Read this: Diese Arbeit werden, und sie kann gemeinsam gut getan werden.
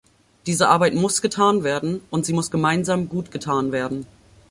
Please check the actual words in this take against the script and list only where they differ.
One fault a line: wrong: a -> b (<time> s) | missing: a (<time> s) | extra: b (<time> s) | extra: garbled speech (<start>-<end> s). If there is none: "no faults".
extra: muss getan (0.9 s)
wrong: kann -> muss (2.3 s)